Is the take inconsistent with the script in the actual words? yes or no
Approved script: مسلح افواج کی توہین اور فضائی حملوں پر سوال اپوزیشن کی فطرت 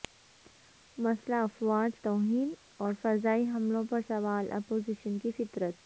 yes